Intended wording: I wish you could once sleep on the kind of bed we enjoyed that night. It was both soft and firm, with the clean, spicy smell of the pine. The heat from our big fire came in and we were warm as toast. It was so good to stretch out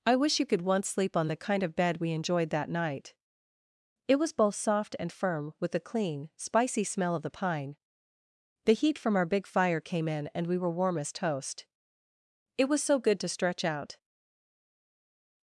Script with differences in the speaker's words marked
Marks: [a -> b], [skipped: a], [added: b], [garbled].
I wish you could once sleep on the kind of bed we enjoyed that night. It was both soft and firm, with the clean, spicy smell of the pine. The heat from our big fire came in and we were warm as toast. It was so good to stretch out